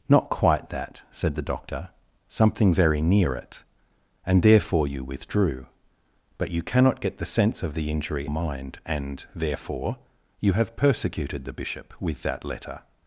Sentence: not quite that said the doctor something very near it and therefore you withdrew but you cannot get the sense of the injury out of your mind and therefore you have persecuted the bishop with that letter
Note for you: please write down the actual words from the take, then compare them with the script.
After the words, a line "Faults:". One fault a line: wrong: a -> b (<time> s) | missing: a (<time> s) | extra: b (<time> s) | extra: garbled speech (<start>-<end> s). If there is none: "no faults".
not quite that said the doctor something very near it and therefore you withdrew but you cannot get the sense of the injury mind and therefore you have persecuted the bishop with that letter
Faults:
missing: out of your (8.3 s)